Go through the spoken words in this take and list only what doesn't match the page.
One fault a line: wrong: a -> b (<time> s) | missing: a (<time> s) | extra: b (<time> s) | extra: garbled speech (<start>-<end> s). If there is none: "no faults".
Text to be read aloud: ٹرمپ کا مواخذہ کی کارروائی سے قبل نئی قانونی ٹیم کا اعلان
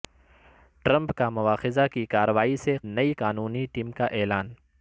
missing: قبل (2.8 s)